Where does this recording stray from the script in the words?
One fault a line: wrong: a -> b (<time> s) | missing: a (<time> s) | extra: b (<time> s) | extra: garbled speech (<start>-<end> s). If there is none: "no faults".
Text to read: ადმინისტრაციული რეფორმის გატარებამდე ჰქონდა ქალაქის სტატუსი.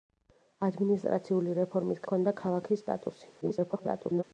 missing: გატარებამდე (2.0 s)
extra: garbled speech (3.4-4.2 s)